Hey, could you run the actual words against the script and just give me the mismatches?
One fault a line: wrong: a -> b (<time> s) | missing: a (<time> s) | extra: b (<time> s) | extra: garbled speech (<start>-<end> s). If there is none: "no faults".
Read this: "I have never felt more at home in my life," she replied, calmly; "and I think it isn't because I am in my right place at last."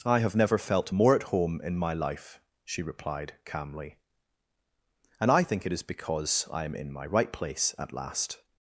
wrong: isn't -> is (5.7 s)